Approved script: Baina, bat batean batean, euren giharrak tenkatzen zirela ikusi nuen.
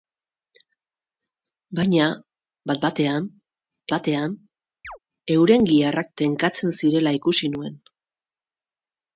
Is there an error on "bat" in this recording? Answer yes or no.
no